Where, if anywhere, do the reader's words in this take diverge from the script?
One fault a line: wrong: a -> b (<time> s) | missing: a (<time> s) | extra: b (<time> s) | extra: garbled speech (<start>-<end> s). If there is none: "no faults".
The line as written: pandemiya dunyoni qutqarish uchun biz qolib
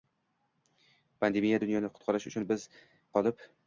no faults